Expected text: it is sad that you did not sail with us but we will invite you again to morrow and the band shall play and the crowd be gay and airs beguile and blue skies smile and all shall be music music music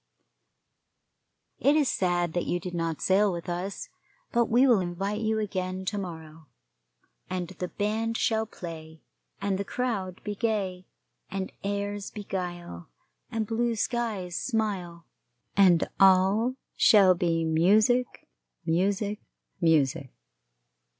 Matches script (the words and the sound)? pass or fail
pass